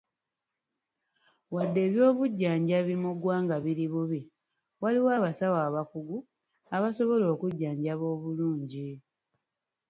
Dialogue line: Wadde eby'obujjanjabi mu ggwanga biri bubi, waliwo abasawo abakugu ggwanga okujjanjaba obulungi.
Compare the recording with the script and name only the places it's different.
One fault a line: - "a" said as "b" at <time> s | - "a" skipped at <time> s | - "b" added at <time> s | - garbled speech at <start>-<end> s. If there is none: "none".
- "ggwanga" said as "abasobola" at 6.8 s